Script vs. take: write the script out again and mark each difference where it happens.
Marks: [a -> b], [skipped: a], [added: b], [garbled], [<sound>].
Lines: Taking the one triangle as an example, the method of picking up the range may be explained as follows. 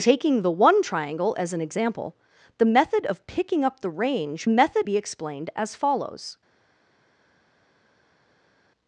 Taking the one triangle as an example, the method of picking up the range [may -> method] be explained as follows.